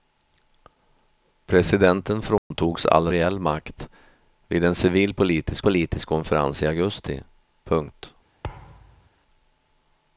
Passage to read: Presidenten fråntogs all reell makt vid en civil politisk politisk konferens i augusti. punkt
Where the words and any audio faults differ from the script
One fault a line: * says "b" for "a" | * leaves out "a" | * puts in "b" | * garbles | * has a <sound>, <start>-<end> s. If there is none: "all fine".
* has a dropout, 2.4-2.5 s
* has a thud, 8.4-9.1 s